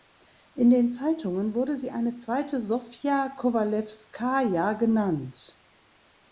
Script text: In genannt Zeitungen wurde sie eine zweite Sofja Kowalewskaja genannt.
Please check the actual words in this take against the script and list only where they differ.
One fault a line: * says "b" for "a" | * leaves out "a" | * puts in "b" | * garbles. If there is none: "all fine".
* says "den" for "genannt"